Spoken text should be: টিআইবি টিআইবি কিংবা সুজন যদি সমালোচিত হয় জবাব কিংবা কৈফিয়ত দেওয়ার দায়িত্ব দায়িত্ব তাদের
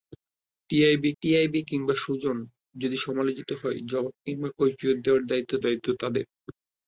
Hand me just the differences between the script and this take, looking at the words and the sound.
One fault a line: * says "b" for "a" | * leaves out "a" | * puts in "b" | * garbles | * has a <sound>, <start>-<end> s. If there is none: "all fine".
all fine